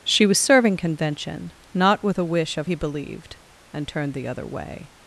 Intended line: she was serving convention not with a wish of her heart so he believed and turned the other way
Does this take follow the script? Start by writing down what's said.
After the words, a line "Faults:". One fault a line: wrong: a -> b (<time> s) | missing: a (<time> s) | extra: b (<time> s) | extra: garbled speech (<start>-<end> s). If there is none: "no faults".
she was serving convention not with a wish of he believed and turned the other way
Faults:
missing: her heart so (2.7 s)